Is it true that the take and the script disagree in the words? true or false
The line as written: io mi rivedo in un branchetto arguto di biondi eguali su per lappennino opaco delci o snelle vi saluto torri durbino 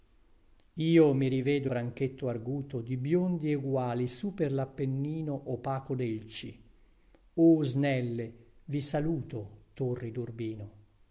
true